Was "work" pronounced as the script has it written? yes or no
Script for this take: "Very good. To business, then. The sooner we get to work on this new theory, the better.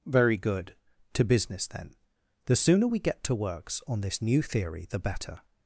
no